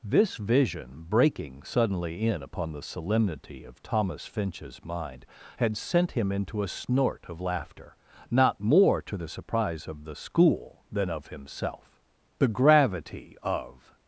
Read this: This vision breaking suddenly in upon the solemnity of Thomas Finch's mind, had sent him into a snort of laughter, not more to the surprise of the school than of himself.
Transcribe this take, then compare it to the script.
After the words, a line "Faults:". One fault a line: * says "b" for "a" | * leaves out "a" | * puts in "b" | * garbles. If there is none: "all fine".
This vision breaking suddenly in upon the solemnity of Thomas Finch's mind, had sent him into a snort of laughter, not more to the surprise of the school than of himself. The gravity of
Faults:
* puts in "The gravity of"